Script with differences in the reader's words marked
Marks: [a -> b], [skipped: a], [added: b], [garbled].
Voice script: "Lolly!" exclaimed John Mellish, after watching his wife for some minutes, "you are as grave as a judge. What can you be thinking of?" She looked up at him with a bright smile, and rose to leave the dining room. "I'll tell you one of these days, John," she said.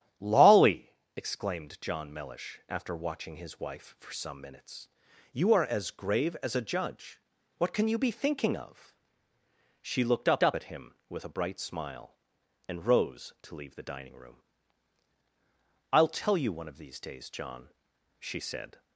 "Lolly!" exclaimed John Mellish, after watching his wife for some minutes, "you are as grave as a judge. What can you be thinking of?" She looked up [added: up] at him with a bright smile, and rose to leave the dining room. "I'll tell you one of these days, John," she said.